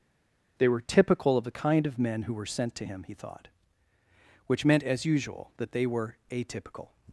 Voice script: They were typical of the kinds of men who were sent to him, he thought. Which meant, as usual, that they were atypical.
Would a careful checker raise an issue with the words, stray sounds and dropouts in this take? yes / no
yes